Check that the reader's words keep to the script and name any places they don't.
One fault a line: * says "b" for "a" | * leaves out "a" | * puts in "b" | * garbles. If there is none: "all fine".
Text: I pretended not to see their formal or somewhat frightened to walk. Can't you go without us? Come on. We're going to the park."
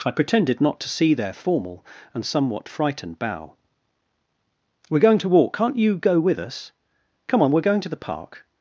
* says "and" for "or"
* puts in "bow We're going"
* says "with" for "without"